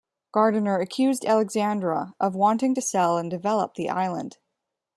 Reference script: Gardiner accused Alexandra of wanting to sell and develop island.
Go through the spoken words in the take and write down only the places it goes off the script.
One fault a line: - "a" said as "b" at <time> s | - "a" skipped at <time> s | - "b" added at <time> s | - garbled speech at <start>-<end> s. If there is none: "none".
- "the" added at 3.8 s